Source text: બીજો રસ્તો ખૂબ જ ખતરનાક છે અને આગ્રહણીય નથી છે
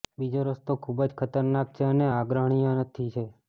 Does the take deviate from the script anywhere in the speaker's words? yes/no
no